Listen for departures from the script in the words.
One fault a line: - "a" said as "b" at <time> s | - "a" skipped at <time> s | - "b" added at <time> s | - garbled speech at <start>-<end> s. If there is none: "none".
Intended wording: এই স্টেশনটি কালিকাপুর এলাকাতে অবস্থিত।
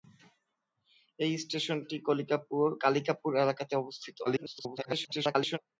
- garbled speech at 4.2-5.6 s